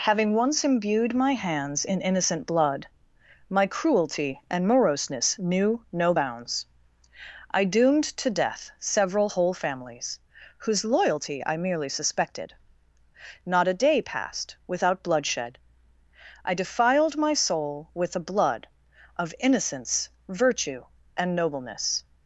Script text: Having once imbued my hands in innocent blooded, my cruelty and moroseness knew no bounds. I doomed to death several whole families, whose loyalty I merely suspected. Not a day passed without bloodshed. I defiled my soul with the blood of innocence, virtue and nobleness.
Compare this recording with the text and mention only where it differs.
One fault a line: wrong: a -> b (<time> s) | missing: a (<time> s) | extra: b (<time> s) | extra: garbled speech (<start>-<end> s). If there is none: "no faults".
wrong: blooded -> blood (2.5 s)